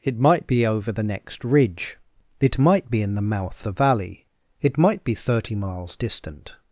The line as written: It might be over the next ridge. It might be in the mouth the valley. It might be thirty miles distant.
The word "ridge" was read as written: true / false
true